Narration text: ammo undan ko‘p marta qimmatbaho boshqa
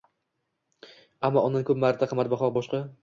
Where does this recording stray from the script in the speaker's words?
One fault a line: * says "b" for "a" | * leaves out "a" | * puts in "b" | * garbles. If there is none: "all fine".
all fine